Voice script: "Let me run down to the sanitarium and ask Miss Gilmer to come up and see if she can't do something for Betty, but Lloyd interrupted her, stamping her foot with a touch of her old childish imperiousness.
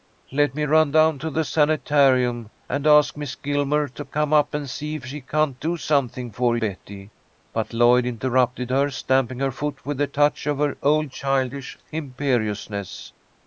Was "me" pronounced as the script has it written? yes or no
yes